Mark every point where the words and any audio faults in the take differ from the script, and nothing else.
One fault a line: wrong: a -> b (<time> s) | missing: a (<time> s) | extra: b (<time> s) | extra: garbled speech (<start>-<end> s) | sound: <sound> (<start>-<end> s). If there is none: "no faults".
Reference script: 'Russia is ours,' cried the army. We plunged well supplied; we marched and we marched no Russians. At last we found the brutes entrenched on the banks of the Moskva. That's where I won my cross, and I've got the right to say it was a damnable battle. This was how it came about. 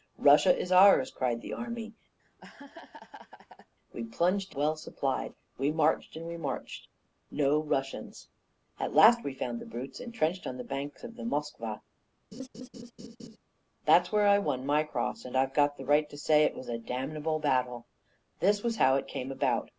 sound: laugh (2.2-3.7 s)
sound: laugh (12.3-13.4 s)